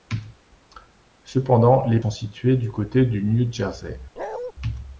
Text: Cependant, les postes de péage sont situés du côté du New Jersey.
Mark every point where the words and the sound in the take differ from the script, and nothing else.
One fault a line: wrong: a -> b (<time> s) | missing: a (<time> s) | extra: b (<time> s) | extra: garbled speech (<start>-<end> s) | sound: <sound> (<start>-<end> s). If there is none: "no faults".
missing: postes de péage (2.0 s)
sound: bark (4.2-4.5 s)